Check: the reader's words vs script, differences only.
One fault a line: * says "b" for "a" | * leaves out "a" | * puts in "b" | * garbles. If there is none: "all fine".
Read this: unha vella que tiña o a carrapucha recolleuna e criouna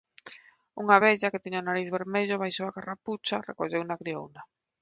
* puts in "nariz vermello baixo"